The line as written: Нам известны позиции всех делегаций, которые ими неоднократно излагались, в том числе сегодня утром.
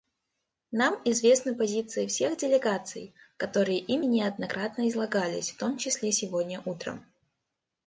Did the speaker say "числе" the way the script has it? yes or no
yes